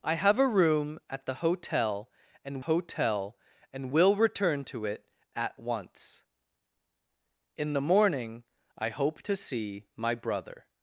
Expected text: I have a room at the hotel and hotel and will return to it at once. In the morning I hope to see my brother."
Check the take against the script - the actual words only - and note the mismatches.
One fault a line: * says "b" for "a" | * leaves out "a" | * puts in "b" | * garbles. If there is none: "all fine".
all fine